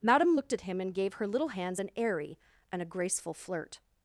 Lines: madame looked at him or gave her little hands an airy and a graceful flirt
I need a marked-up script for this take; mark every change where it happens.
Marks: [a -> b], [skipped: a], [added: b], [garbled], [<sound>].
madame looked at him [or -> and] gave her little hands an airy and a graceful flirt